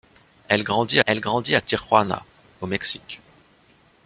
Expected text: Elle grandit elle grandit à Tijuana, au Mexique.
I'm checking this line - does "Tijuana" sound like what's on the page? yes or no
yes